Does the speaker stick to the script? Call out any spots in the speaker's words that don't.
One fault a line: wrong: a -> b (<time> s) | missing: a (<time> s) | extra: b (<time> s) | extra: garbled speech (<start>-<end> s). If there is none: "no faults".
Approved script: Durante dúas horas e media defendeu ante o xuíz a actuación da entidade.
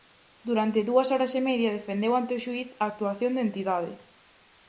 no faults